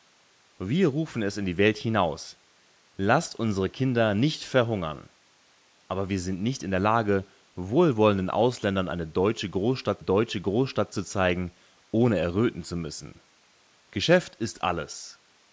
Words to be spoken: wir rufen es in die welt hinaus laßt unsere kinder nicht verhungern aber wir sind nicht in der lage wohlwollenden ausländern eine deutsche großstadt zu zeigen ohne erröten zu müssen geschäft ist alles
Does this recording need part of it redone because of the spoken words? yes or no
yes